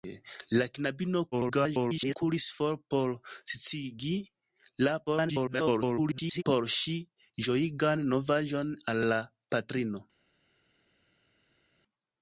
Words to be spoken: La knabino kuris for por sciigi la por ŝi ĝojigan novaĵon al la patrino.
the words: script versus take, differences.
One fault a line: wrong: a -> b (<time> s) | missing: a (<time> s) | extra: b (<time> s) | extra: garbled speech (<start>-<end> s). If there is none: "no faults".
extra: garbled speech (1.3-2.2 s)
extra: garbled speech (5.1-6.4 s)